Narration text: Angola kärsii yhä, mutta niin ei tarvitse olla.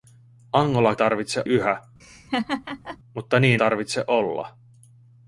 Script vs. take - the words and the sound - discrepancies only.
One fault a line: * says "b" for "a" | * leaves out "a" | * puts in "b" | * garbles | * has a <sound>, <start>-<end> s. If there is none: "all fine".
* says "tarvitse" for "kärsii"
* has a laugh, 2.0-3.0 s
* leaves out "ei"